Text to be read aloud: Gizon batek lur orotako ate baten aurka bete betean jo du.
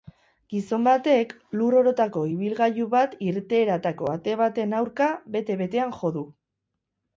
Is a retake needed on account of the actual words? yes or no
yes